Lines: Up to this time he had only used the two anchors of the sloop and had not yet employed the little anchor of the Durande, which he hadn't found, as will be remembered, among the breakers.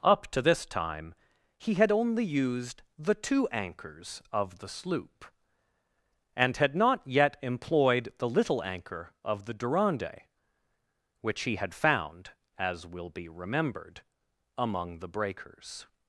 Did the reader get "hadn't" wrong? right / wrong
wrong